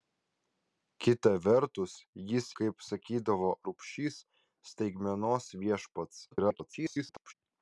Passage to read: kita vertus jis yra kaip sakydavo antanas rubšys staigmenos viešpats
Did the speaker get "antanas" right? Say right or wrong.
wrong